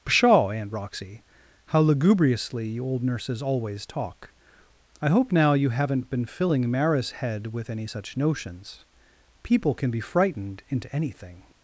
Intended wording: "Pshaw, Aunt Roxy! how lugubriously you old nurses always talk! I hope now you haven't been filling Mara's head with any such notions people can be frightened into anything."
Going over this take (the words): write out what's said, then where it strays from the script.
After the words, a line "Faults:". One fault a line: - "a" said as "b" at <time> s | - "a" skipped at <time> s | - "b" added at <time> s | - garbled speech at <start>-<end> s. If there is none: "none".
"Pshaw, Aunt Roxy! how lugubriously you old nurses always talk! I hope now you haven't been filling Mara's head with any such notions people can be frightened into anything."
Faults:
none